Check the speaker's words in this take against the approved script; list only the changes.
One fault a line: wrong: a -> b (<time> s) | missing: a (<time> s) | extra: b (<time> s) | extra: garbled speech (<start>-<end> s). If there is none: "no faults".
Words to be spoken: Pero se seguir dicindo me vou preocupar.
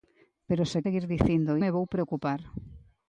no faults